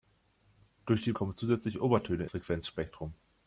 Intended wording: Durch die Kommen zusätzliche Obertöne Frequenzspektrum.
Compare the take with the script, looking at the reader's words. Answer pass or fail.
pass